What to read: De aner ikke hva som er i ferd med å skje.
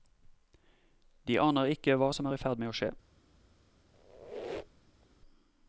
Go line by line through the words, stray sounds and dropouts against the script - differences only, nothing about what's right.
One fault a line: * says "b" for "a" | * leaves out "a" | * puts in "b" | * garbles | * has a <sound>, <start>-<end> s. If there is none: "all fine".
* has a squeak, 3.9-5.1 s